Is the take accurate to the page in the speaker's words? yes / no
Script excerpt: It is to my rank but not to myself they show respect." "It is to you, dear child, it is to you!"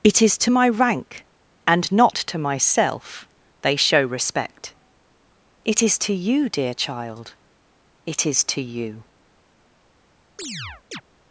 no